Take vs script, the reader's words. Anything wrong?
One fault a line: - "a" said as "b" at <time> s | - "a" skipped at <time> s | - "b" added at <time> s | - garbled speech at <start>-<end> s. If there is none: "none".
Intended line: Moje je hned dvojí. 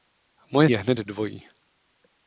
none